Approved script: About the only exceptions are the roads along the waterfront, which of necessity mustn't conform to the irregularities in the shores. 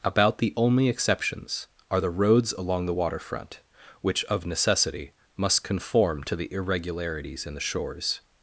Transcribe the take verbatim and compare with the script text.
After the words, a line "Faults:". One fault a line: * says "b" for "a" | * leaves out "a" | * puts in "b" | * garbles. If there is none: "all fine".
About the only exceptions are the roads along the waterfront, which of necessity must conform to the irregularities in the shores.
Faults:
* says "must" for "mustn't"